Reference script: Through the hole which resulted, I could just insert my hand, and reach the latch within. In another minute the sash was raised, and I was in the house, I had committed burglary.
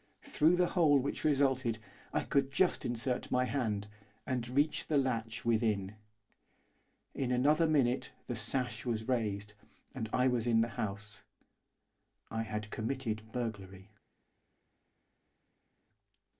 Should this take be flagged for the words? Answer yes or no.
no